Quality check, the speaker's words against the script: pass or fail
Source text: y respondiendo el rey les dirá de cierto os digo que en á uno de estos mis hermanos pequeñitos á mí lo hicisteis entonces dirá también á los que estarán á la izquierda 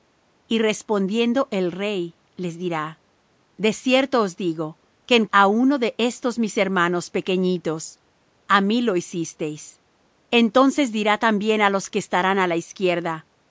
pass